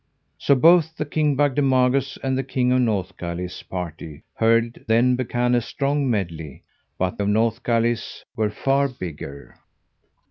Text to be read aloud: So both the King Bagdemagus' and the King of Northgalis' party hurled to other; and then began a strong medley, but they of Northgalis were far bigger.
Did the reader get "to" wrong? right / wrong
wrong